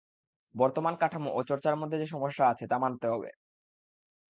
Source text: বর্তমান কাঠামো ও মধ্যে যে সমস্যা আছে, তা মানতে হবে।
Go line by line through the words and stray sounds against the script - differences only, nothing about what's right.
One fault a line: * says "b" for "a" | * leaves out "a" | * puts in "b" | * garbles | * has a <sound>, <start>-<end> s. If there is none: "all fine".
* puts in "চর্চার"